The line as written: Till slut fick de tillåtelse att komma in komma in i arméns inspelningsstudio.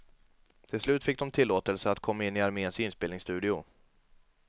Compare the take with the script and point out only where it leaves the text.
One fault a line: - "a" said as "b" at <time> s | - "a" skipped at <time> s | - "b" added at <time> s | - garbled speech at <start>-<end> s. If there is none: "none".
- "komma in" skipped at 2.4 s